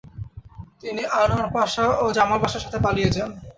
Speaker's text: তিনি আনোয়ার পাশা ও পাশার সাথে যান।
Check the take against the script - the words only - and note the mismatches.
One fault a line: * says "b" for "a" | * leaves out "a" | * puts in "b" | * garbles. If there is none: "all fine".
* puts in "জামাল"
* puts in "পালিয়ে"